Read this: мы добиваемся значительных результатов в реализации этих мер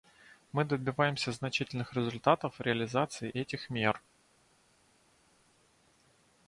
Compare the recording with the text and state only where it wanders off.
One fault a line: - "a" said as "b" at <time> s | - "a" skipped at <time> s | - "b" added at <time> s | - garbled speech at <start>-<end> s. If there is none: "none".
none